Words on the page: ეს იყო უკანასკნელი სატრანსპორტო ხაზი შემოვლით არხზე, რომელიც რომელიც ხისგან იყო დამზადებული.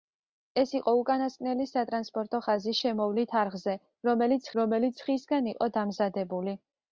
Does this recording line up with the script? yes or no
yes